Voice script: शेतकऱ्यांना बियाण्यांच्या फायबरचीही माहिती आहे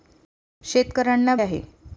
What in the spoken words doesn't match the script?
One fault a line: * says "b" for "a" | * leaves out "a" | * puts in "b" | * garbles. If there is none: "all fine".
* leaves out "बियाण्यांच्या फायबरचीही माहिती"